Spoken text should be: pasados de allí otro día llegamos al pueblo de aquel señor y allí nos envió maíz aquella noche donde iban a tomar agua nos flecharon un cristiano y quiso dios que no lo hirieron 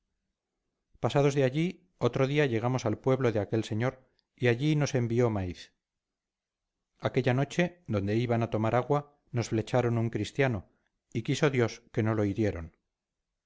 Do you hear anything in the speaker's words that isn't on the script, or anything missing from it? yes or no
no